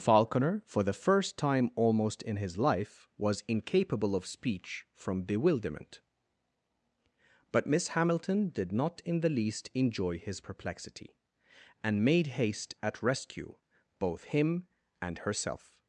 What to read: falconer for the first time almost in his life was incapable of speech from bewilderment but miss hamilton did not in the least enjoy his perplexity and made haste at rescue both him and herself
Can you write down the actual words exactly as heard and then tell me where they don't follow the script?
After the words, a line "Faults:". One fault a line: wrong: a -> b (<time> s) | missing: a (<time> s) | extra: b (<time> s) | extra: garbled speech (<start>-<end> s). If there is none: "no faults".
falconer for the first time almost in his life was incapable of speech from bewilderment but miss hamilton did not in the least enjoy his perplexity and made haste at rescue both him and herself
Faults:
no faults